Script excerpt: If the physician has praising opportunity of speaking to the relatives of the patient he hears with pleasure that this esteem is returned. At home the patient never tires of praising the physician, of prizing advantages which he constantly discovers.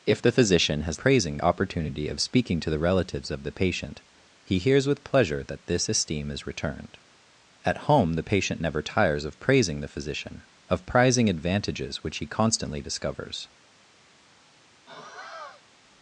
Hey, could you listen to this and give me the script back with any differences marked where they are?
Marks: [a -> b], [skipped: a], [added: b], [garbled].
If the physician has praising opportunity of speaking to the relatives of the patient he hears with pleasure that this esteem is returned. At home the patient never tires of praising the physician, of prizing advantages which he constantly discovers.